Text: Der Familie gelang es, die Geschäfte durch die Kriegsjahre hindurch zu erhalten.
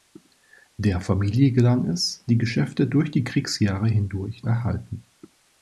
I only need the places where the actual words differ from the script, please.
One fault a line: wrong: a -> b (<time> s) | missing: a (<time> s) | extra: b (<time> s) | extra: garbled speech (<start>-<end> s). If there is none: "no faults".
missing: zu (4.4 s)